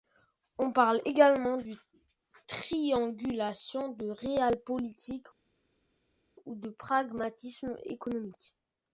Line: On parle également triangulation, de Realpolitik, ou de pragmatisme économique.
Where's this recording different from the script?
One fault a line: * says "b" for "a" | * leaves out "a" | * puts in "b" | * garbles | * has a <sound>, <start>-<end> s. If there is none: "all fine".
all fine